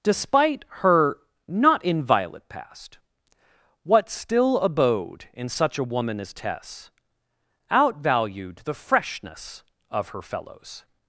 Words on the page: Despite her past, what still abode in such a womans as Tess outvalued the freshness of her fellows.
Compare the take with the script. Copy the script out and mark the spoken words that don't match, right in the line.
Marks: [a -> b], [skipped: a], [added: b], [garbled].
Despite her [added: not inviolate] past, what still abode in such a [womans -> woman] as Tess outvalued the freshness of her fellows.